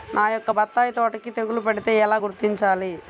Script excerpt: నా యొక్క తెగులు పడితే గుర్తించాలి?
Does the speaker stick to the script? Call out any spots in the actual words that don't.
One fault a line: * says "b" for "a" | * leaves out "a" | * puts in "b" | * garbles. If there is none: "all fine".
* puts in "బత్తాయి తోటకి"
* puts in "ఎలా"